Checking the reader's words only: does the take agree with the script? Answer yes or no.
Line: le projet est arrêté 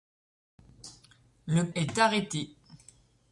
no